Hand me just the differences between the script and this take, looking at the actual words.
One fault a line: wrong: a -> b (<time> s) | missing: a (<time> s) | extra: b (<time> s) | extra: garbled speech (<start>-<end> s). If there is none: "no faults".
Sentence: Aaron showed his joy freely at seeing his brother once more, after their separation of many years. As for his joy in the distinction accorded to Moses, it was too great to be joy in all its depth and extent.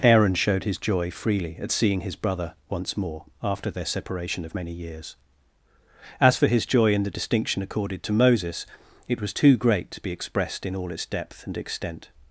wrong: joy -> expressed (10.1 s)